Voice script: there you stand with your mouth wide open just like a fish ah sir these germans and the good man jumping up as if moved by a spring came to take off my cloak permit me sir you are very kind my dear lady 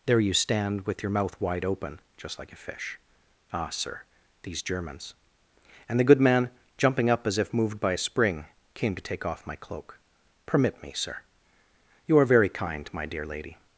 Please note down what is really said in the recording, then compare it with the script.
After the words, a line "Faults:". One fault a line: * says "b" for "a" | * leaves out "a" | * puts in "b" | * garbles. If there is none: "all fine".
there you stand with your mouth wide open just like a fish ah sir these germans and the good man jumping up as if moved by a spring came to take off my cloak permit me sir you are very kind my dear lady
Faults:
all fine